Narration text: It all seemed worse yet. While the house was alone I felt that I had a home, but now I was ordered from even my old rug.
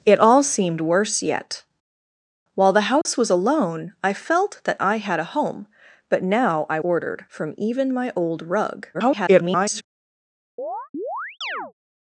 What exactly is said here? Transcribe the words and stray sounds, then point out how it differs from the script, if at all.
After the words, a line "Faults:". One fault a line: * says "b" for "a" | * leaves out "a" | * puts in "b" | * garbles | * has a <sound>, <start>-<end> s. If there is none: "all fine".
It all seemed worse yet. While the house was alone I felt that I had a home, but now I ordered from even my old rug. [garbled]
Faults:
* has a dropout, 3.0-3.1 s
* leaves out "was"
* garbles
* has a chirp, 10.6-11.7 s